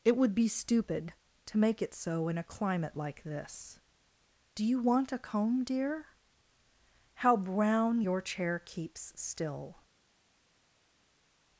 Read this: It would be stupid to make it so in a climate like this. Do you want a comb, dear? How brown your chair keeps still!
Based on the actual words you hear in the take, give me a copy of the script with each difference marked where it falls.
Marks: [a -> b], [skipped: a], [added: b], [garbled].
It would be stupid to make it so in a climate like this. Do you want a comb, dear? How brown your chair keeps still!